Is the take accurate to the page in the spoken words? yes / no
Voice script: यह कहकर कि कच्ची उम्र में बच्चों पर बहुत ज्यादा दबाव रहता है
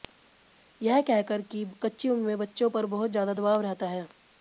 yes